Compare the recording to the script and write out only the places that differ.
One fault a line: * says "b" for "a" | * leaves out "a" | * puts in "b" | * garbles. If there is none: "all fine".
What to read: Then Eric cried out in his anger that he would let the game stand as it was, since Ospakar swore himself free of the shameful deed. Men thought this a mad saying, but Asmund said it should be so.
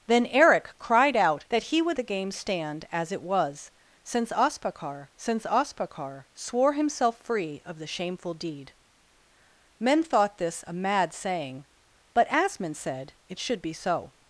* leaves out "in his anger"
* leaves out "let"
* puts in "since Ospakar"